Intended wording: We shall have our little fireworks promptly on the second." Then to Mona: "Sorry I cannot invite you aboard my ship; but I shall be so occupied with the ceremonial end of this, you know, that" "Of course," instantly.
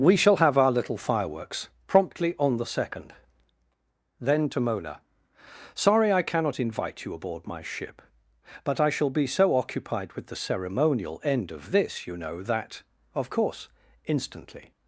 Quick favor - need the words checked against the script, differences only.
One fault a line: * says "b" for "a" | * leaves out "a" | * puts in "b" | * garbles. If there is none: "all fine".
all fine